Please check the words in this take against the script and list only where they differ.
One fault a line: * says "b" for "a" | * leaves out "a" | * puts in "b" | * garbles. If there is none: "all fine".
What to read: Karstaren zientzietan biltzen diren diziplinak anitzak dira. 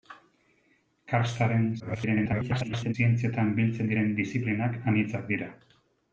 * garbles